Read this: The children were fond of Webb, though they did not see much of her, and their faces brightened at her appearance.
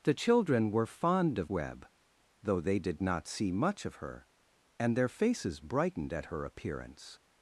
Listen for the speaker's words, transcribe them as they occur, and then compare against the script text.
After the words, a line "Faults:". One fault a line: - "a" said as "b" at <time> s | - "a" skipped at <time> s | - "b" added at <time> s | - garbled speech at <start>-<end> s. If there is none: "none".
The children were fond of Webb, though they did not see much of her, and their faces brightened at her appearance.
Faults:
none